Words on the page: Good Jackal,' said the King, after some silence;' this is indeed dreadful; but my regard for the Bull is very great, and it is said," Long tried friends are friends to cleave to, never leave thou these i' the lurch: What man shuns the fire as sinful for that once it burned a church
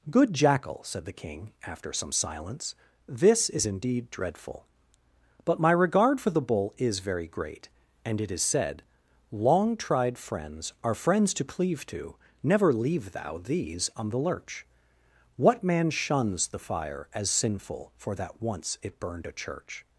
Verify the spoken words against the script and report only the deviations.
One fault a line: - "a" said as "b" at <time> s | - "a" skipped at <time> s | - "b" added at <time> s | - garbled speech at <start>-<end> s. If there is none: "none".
- "i" said as "on" at 14.0 s